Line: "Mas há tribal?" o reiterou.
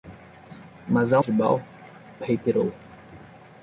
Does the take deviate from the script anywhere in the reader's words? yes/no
no